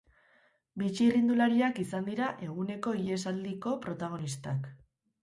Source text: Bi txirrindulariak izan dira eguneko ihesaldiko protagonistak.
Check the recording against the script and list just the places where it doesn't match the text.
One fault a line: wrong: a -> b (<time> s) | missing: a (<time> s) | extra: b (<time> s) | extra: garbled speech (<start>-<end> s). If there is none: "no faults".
no faults